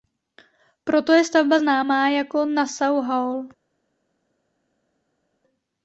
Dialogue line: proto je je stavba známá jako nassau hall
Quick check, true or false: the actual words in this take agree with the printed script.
false